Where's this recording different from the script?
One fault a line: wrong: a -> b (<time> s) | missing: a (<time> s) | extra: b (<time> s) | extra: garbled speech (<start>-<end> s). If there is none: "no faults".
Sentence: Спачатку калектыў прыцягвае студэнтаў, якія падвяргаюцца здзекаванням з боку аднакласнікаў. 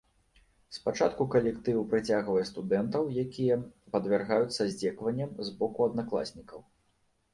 no faults